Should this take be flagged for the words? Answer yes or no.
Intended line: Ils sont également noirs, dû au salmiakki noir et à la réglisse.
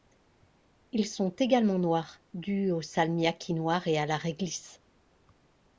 no